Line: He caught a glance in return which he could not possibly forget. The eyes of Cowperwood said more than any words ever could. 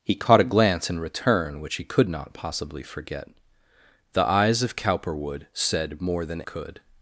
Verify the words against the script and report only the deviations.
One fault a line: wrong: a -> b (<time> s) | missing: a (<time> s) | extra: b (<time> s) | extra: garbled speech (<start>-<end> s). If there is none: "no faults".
missing: any words ever (6.4 s)